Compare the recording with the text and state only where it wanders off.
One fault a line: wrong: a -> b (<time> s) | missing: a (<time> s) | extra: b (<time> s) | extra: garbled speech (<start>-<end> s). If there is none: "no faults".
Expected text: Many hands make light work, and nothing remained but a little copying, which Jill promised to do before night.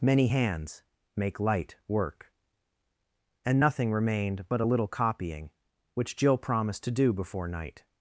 no faults